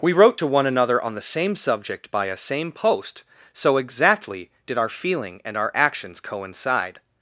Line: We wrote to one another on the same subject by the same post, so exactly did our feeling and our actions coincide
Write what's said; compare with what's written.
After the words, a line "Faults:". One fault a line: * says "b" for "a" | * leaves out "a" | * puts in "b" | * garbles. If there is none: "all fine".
We wrote to one another on the same subject by a same post, so exactly did our feeling and our actions coincide
Faults:
* says "a" for "the"